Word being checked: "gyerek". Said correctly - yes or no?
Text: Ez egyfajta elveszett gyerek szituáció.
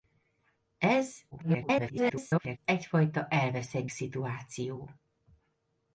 no